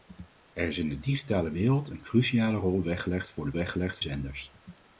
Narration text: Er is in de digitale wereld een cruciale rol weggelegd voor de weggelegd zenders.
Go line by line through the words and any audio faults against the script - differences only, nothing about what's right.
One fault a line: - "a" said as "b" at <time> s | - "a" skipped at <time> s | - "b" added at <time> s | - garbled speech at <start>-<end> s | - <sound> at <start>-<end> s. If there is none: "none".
none